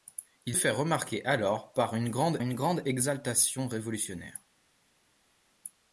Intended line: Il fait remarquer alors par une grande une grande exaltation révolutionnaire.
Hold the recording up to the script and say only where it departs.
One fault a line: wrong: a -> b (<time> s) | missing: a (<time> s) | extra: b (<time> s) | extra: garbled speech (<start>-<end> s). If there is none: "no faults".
no faults